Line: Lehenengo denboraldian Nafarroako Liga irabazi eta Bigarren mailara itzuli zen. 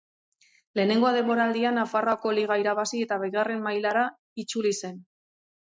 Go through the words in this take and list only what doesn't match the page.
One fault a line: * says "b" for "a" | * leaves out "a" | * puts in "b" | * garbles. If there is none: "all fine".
all fine